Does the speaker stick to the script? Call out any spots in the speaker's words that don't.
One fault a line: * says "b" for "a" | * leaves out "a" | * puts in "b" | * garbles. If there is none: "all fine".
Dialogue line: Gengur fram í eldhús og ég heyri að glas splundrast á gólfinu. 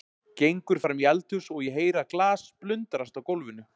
all fine